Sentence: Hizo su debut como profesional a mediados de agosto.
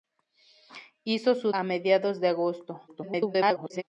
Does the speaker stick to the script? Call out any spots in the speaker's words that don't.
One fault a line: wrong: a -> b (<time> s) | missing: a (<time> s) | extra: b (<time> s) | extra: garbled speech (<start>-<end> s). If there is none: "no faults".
missing: debut como profesional (1.5 s)
extra: garbled speech (2.9-3.8 s)